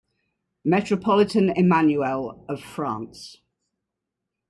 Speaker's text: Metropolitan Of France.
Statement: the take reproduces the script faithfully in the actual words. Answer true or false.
false